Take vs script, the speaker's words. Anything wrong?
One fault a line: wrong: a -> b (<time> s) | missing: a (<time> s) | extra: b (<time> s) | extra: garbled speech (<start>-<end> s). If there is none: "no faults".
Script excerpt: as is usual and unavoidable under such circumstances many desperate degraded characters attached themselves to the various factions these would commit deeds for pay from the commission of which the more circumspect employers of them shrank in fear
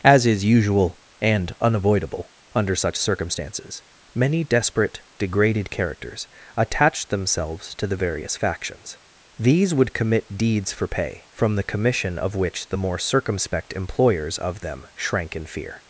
no faults